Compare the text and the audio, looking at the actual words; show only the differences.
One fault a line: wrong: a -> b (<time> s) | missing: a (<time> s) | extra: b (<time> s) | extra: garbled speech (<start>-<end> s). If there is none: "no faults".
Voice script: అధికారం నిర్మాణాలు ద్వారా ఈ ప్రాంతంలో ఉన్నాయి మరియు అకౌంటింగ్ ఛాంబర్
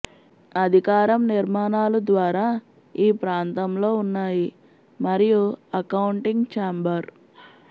no faults